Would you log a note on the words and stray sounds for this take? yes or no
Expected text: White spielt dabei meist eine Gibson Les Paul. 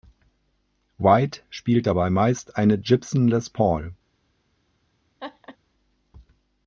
yes